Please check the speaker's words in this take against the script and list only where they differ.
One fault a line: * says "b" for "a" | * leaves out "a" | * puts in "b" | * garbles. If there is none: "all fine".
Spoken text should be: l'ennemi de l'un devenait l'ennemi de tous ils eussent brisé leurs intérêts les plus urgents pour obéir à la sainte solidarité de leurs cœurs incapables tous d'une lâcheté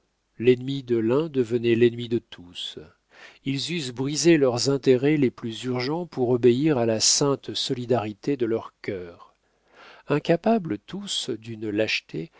all fine